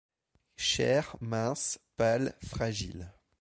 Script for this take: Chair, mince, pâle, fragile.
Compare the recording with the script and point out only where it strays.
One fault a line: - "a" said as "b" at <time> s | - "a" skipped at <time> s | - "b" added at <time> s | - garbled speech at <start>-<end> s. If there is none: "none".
none